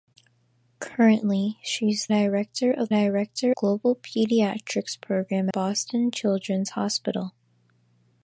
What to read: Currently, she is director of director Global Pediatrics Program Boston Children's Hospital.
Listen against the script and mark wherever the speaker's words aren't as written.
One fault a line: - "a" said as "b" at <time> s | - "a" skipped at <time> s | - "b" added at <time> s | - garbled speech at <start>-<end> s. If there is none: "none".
none